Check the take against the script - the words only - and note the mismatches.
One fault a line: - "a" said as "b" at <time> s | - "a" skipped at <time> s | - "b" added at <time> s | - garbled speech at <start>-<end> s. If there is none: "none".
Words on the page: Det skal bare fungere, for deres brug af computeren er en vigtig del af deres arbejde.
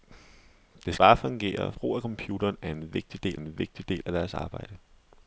- "skal" skipped at 0.9 s
- "for deres" skipped at 1.7 s
- "en vigtig del" added at 3.3 s